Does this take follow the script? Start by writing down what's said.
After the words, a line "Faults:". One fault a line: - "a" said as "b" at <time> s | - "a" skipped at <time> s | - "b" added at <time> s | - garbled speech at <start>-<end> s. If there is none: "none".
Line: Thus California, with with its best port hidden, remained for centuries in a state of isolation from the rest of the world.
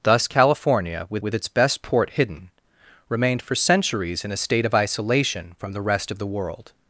Thus California, with with its best port hidden, remained for centuries in a state of isolation from the rest of the world.
Faults:
none